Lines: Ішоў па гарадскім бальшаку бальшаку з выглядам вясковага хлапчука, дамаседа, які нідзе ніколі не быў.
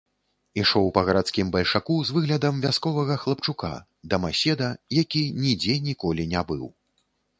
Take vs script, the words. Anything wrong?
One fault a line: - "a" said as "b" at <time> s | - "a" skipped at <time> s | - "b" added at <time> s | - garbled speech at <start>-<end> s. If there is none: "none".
- "бальшаку" skipped at 2.0 s